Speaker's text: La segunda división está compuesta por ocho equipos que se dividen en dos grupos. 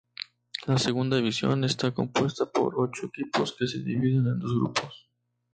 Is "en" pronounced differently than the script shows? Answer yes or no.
no